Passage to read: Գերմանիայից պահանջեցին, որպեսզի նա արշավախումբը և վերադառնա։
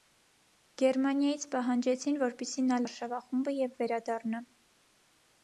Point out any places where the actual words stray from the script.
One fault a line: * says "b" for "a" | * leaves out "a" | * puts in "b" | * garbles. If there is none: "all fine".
all fine